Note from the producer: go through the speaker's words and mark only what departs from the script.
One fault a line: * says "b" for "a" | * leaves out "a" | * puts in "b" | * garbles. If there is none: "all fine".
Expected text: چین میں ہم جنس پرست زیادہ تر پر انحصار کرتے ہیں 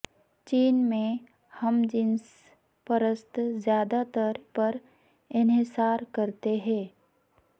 all fine